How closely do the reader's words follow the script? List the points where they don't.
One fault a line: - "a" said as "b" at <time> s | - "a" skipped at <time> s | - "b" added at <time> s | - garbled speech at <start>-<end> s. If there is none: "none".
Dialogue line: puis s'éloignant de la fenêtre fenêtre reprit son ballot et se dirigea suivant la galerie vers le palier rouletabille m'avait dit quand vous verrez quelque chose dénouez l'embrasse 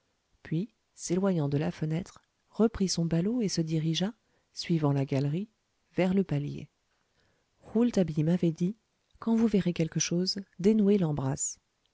- "fenêtre" skipped at 2.2 s